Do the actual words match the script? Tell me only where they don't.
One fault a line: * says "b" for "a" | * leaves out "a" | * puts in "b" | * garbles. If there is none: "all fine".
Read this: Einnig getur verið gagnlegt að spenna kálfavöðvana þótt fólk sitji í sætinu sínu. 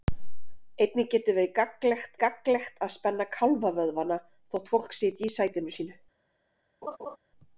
* puts in "gagnlegt"